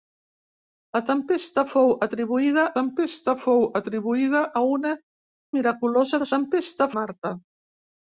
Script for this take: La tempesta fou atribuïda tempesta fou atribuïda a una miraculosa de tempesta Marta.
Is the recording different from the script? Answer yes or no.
no